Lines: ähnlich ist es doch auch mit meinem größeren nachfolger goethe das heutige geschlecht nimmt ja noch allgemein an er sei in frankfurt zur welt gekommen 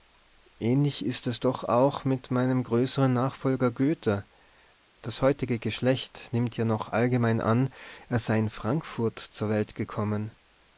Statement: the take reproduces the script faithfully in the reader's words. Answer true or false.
true